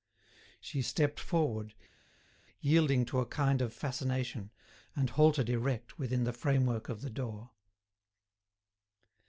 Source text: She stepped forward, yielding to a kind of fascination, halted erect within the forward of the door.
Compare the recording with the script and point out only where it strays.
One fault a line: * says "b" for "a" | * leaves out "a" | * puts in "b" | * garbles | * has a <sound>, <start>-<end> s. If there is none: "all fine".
* puts in "and"
* says "framework" for "forward"